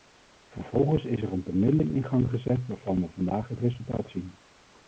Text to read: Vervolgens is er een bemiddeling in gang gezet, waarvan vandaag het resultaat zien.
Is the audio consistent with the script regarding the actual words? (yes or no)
no